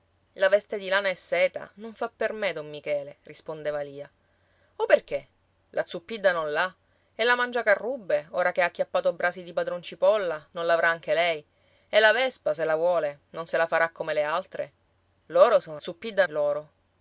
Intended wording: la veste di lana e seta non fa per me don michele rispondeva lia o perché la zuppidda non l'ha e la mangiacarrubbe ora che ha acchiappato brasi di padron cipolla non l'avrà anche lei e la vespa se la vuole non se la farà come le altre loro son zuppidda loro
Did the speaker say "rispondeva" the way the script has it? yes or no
yes